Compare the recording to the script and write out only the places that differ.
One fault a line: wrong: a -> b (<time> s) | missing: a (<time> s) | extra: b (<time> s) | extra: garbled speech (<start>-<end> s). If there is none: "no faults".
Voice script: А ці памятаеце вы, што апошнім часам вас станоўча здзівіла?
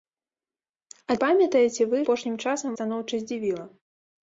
missing: ці (1.2 s)
missing: што (2.0 s)
missing: вас (2.7 s)